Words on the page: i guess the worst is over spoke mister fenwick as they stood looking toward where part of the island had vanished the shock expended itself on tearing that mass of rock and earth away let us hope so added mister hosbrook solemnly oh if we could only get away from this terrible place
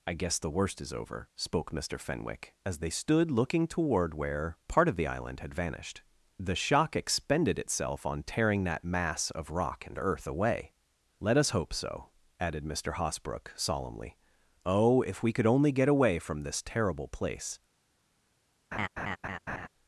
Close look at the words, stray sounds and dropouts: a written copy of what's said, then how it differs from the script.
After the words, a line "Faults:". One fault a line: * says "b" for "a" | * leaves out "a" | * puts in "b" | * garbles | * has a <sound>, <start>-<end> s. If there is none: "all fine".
i guess the worst is over spoke mister fenwick as they stood looking toward where part of the island had vanished the shock expended itself on tearing that mass of rock and earth away let us hope so added mister hosbrook solemnly oh if we could only get away from this terrible place
Faults:
* has a laugh, 18.7-19.7 s